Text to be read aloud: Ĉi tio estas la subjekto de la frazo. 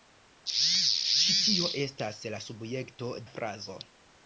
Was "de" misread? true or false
true